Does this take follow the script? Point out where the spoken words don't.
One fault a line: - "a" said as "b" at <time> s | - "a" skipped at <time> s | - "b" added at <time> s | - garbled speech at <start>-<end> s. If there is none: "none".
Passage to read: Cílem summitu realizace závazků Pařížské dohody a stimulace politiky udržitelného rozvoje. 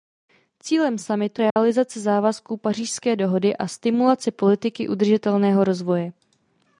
none